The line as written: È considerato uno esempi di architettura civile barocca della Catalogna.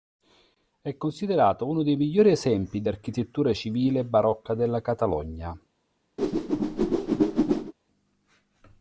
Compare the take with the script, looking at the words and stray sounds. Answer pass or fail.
fail